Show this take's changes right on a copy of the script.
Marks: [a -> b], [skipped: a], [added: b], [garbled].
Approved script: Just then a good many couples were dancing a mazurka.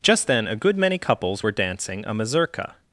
Just then a good many couples were dancing a mazurka.